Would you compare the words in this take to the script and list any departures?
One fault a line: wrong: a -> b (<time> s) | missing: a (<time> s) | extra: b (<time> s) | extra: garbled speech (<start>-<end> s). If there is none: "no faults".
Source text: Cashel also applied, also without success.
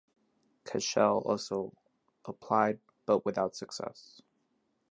wrong: also -> but (3.1 s)